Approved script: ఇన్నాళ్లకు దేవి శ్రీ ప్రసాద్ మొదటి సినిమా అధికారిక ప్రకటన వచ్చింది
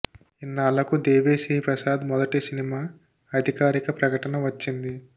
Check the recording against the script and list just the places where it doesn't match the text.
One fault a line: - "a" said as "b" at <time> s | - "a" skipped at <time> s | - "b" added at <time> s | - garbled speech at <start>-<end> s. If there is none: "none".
none